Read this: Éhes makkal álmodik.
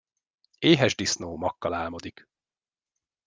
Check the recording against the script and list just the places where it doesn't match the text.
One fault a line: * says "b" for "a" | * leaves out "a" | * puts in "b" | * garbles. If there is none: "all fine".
* puts in "disznó"